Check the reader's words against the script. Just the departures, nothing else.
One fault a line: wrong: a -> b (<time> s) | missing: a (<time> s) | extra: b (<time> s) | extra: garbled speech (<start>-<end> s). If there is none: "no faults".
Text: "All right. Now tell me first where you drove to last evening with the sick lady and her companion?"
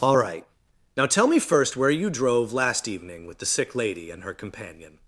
missing: to (2.5 s)